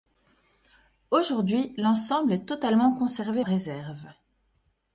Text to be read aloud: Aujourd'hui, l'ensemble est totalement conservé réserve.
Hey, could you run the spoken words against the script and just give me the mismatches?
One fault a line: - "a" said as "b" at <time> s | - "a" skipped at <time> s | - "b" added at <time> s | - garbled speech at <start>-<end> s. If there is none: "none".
none